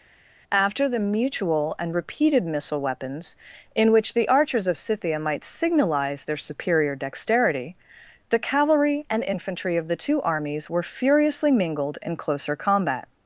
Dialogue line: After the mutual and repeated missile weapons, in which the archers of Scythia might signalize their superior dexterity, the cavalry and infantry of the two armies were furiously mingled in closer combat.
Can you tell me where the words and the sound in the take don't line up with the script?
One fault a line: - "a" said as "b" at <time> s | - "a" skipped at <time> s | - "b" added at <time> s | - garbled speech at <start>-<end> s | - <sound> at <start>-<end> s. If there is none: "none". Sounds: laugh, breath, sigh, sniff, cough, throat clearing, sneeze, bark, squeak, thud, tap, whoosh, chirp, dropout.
none